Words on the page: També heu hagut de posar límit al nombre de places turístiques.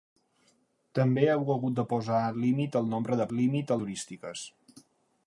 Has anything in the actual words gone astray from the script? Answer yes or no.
yes